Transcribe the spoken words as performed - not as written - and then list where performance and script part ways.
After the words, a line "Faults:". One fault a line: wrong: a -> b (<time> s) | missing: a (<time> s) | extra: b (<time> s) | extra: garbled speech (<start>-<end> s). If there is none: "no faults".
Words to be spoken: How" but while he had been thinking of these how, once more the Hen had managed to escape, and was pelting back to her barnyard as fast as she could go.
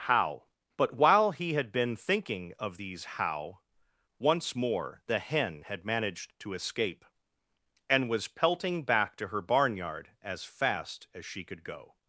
How" but while he had been thinking of these how, once more the Hen had managed to escape, and was pelting back to her barnyard as fast as she could go.
Faults:
no faults